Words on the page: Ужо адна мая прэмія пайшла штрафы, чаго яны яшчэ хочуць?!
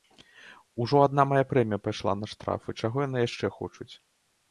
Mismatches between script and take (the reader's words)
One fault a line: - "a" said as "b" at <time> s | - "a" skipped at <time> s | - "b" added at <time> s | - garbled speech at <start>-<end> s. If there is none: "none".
- "на" added at 2.2 s